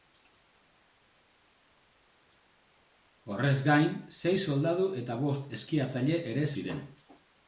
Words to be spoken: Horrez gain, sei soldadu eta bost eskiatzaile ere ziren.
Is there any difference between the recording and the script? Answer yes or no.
no